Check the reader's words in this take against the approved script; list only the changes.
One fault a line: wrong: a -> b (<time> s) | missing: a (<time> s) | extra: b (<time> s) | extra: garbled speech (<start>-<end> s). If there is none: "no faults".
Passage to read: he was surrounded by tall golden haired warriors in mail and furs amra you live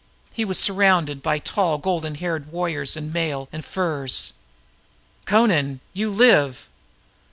no faults